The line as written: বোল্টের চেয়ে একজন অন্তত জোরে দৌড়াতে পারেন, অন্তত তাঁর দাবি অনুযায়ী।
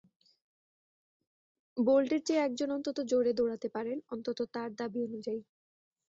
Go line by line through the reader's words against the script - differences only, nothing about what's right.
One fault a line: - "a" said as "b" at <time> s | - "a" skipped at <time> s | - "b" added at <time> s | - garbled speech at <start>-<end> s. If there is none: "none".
none